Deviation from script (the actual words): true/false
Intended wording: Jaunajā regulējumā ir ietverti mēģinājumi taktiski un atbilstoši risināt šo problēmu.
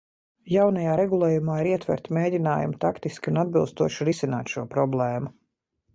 false